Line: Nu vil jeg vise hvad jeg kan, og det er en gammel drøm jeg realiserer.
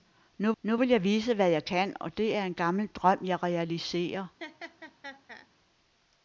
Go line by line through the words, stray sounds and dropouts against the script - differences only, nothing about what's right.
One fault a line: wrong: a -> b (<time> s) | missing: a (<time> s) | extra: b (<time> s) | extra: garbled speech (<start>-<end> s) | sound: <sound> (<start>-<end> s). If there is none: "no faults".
extra: nu (0.6 s)
sound: laugh (4.4-5.5 s)